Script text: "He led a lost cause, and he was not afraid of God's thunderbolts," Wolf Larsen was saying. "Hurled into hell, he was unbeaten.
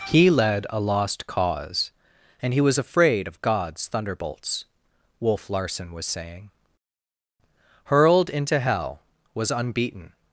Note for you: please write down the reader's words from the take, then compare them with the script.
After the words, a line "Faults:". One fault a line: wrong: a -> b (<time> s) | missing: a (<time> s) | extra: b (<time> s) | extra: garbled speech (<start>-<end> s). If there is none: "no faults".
"He led a lost cause, and he was afraid of God's thunderbolts," Wolf Larsen was saying. "Hurled into hell, was unbeaten.
Faults:
missing: not (2.8 s)
missing: he (9.0 s)